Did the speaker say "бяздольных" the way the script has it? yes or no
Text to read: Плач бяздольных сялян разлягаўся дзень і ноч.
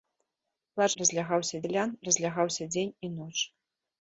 no